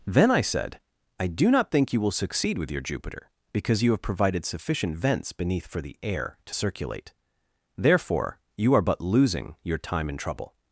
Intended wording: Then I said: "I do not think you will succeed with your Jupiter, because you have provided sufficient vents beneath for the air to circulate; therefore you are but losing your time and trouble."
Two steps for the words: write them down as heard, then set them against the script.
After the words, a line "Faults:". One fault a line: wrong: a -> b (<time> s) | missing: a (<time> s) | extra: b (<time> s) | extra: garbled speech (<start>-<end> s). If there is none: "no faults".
Then I said: "I do not think you will succeed with your Jupiter, because you have provided sufficient vents beneath for the air to circulate; therefore you are but losing your time and trouble."
Faults:
no faults